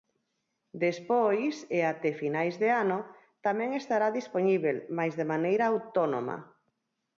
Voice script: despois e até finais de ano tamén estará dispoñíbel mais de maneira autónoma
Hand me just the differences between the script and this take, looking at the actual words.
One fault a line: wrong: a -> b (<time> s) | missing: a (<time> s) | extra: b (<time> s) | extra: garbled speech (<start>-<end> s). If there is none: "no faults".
no faults